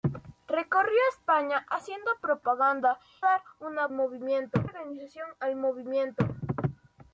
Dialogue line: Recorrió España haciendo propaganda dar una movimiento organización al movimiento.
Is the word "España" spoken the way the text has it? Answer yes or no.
yes